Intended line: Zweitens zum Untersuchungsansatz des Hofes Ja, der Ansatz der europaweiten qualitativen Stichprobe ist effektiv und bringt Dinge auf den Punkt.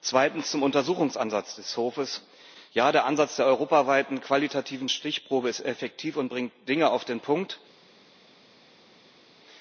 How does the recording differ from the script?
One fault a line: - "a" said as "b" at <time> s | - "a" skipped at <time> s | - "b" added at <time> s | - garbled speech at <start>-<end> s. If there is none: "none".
none